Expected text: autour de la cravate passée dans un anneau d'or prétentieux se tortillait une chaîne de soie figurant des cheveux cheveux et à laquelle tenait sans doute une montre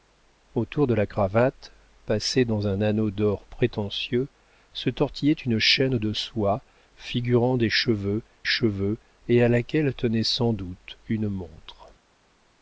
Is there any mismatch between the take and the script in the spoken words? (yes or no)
no